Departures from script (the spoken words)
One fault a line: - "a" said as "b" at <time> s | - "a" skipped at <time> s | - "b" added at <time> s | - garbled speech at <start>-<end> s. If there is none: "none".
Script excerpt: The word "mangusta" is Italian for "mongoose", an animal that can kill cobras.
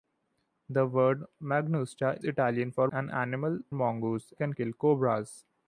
- "is" skipped at 2.2 s
- "mongoose" skipped at 2.9 s
- "that" said as "mongoose" at 3.7 s